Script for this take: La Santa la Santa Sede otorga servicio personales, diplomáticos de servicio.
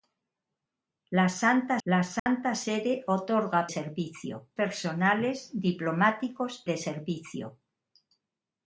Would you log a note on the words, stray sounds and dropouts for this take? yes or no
yes